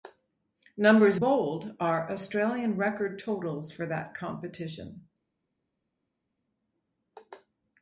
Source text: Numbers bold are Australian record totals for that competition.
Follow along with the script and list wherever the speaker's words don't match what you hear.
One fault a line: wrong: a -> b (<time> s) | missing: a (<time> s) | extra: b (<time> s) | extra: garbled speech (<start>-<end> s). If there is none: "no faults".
no faults